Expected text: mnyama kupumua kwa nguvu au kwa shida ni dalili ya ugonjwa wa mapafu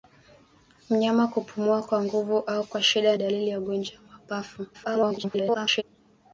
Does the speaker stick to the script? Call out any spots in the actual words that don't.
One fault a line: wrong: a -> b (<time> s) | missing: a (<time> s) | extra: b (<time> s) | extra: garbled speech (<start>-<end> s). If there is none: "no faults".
missing: ni (3.1 s)
extra: garbled speech (4.7-5.8 s)